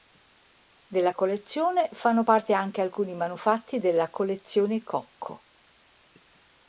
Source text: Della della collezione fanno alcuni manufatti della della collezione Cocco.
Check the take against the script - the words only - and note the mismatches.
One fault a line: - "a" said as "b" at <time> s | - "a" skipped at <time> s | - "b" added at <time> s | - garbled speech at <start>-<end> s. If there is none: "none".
- "della" skipped at 1.1 s
- "parte anche" added at 2.2 s
- "della" skipped at 4.1 s